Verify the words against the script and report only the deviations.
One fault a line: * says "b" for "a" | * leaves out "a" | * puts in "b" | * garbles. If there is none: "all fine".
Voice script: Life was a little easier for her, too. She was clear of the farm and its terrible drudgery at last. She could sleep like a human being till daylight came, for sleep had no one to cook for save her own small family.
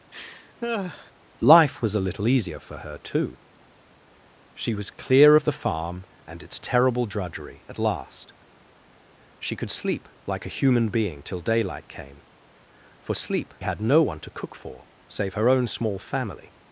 all fine